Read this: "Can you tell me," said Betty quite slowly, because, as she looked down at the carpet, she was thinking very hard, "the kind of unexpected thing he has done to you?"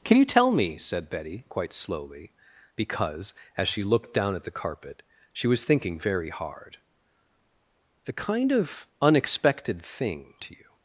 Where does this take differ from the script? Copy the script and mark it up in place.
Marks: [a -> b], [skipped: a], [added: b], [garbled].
"Can you tell me," said Betty quite slowly, because, as she looked down at the carpet, she was thinking very hard, "the kind of unexpected thing [skipped: he has done] to you?"